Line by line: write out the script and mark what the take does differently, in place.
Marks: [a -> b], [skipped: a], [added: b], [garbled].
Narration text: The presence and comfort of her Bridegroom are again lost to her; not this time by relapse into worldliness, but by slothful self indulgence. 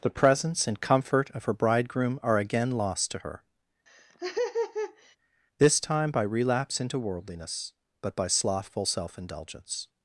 The presence and comfort of her Bridegroom are again lost to her; [skipped: not] this time by relapse into worldliness, but by slothful self indulgence.